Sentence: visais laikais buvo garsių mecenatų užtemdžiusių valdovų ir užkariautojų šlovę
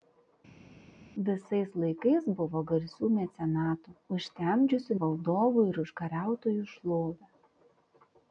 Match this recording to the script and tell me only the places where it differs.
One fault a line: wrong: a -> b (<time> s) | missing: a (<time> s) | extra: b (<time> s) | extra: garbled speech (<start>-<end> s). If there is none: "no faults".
no faults